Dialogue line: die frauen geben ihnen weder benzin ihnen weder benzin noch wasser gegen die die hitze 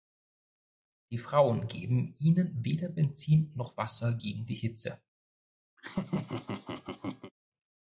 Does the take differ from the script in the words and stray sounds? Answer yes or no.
yes